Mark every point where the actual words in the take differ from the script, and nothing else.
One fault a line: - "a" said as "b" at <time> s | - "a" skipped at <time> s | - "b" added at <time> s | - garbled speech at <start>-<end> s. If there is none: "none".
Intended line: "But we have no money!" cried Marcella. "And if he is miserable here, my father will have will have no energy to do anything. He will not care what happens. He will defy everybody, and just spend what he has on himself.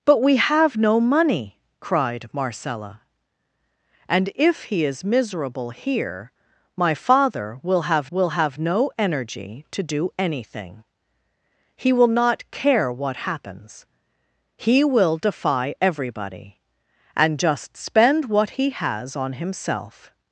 none